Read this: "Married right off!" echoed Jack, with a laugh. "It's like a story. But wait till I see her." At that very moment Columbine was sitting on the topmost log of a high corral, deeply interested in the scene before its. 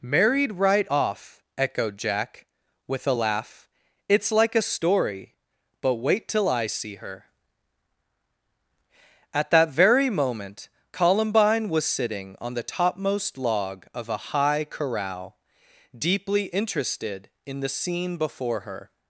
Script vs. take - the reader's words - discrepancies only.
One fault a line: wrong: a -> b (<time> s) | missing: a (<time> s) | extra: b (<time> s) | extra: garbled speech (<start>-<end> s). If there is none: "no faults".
wrong: its -> her (18.6 s)